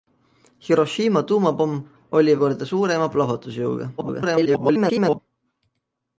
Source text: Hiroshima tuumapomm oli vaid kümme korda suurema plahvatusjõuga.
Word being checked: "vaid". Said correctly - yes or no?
no